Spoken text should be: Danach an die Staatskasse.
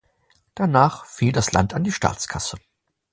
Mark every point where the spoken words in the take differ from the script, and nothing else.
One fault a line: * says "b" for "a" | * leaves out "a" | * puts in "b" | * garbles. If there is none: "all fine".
* puts in "fiel das Land"